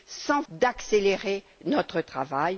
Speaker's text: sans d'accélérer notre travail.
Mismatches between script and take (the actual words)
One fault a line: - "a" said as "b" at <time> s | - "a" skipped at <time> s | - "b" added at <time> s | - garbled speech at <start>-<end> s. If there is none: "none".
none